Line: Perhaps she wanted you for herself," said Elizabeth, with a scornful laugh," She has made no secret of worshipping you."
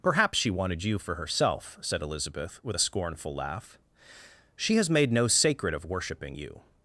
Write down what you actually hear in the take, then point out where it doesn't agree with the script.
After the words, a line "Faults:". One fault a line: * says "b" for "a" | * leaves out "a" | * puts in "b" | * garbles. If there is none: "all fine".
Perhaps she wanted you for herself," said Elizabeth, with a scornful laugh," She has made no sacred of worshipping you."
Faults:
* says "sacred" for "secret"